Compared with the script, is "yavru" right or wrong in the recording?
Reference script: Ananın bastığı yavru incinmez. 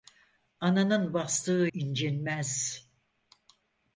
wrong